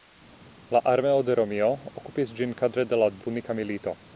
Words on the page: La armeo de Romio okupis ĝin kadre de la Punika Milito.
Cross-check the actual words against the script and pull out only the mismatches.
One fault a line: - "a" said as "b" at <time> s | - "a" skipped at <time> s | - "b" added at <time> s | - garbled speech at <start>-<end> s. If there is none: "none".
none